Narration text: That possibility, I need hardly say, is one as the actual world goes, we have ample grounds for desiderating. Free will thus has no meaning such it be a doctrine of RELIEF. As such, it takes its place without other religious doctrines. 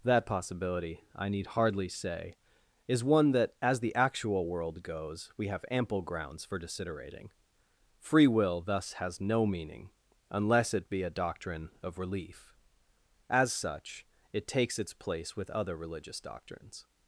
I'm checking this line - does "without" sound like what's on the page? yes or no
no